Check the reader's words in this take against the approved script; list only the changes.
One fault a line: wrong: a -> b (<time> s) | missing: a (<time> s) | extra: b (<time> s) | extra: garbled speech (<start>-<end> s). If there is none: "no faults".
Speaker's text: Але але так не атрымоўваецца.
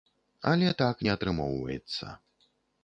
missing: але (0.7 s)